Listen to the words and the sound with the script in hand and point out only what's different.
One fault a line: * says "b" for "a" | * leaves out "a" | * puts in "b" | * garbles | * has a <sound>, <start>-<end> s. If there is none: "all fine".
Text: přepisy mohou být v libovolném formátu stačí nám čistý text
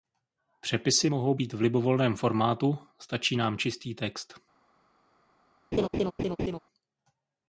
* has a laugh, 5.7-6.6 s